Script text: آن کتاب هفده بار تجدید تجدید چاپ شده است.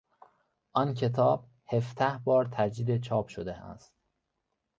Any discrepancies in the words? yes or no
yes